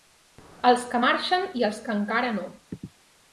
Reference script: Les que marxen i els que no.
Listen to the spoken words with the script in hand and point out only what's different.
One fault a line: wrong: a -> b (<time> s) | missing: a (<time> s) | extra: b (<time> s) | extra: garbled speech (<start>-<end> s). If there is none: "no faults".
wrong: Les -> Els (0.7 s)
extra: encara (2.0 s)